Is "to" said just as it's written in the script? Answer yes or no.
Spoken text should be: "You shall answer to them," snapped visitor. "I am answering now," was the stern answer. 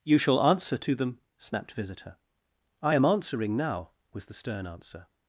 yes